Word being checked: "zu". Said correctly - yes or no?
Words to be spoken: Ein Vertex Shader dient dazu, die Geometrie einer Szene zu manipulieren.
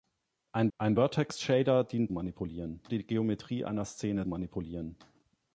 no